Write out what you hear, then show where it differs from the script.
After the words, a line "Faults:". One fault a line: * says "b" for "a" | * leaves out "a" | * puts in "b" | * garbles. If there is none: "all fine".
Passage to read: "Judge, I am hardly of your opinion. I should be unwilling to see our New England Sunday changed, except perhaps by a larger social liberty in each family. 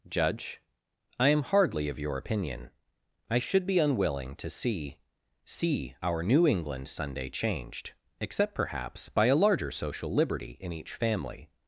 "Judge, I am hardly of your opinion. I should be unwilling to see see our New England Sunday changed, except perhaps by a larger social liberty in each family.
Faults:
* puts in "see"